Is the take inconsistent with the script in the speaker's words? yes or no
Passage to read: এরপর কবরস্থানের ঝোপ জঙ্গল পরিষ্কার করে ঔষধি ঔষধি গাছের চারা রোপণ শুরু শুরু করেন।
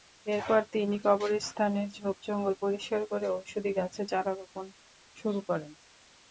yes